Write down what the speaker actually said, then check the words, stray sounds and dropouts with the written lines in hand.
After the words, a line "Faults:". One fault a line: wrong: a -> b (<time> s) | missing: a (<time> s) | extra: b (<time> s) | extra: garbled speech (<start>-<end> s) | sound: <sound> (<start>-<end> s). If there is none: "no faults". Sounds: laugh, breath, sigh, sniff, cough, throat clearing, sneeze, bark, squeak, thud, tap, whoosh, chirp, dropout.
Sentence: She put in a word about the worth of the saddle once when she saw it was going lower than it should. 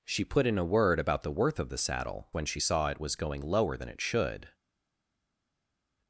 She put in a word about the worth of the saddle when she saw it was going lower than it should.
Faults:
missing: once (2.3 s)